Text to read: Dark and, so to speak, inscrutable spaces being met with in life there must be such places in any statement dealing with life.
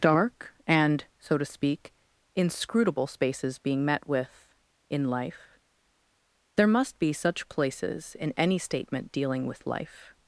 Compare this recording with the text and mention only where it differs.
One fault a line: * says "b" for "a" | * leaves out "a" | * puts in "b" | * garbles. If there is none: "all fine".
all fine